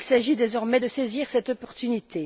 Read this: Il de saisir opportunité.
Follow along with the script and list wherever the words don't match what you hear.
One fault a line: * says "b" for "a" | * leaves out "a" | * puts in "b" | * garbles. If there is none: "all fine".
* puts in "s'agit désormais"
* puts in "cette"